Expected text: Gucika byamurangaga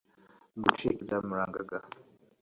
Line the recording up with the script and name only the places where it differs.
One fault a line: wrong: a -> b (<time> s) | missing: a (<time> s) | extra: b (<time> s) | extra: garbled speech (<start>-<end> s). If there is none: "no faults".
no faults